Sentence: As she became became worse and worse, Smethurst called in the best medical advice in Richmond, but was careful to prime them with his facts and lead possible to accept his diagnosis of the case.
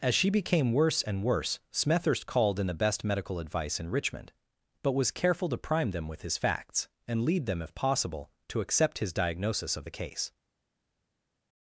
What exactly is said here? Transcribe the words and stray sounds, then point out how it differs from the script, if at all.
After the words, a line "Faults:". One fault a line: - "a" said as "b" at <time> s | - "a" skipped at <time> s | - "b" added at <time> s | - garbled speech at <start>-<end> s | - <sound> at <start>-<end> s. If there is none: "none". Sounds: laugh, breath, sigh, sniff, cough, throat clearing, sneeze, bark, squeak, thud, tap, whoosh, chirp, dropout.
As she became worse and worse, Smethurst called in the best medical advice in Richmond, but was careful to prime them with his facts and lead them if possible to accept his diagnosis of the case.
Faults:
- "became" skipped at 0.7 s
- "them if" added at 7.5 s